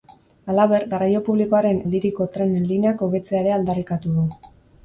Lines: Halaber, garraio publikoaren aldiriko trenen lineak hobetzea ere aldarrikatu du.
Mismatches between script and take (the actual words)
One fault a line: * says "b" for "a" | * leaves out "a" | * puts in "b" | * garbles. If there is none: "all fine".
all fine